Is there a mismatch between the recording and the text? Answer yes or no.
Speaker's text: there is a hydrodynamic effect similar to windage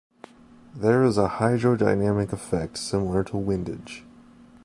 no